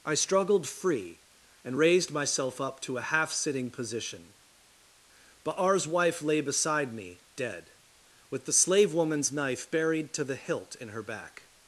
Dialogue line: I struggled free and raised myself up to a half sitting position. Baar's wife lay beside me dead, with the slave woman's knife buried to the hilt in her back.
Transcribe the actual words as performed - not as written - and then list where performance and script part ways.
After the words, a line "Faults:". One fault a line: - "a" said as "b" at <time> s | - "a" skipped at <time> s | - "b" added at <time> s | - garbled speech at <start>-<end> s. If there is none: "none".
I struggled free and raised myself up to a half sitting position. Baar's wife lay beside me dead, with the slave woman's knife buried to the hilt in her back.
Faults:
none